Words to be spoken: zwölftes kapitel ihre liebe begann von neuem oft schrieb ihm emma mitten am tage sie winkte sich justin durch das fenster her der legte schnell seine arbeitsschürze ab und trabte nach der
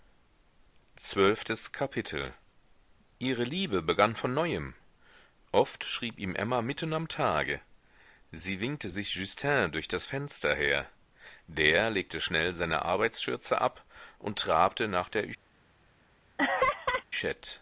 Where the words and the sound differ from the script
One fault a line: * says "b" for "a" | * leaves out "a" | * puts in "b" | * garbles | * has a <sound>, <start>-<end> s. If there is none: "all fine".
* has a laugh, 16.4-17.0 s